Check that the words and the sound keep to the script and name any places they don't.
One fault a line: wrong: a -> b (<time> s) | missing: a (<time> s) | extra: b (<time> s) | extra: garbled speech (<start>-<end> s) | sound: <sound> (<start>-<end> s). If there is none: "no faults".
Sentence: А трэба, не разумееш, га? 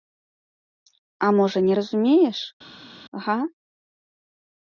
wrong: трэба -> можа (1.4 s)